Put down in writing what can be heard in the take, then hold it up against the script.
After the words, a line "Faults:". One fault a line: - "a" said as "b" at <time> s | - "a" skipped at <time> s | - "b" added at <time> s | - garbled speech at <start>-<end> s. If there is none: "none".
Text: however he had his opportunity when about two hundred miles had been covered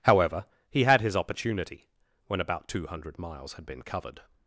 however he had his opportunity when about two hundred miles had been covered
Faults:
none